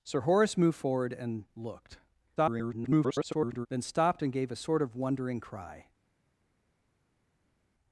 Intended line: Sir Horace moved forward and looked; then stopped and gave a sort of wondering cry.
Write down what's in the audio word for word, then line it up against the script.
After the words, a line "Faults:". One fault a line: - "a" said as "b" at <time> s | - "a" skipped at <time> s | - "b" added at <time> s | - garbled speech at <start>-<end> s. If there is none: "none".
Sir Horace moved forward and looked; [garbled] then stopped and gave a sort of wondering cry.
Faults:
- garbled speech at 2.4-3.7 s